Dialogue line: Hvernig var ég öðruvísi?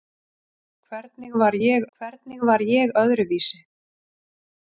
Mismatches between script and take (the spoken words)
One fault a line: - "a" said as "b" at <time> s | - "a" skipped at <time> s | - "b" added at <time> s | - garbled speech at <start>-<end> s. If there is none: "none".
- "hvernig var ég" added at 2.0 s